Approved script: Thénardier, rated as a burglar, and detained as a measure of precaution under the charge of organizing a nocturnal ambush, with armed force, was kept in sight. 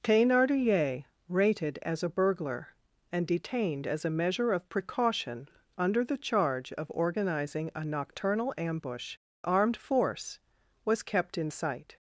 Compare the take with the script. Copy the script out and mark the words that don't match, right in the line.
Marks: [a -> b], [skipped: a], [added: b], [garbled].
Thénardier, rated as a burglar, and detained as a measure of precaution under the charge of organizing a nocturnal ambush, [skipped: with] armed force, was kept in sight.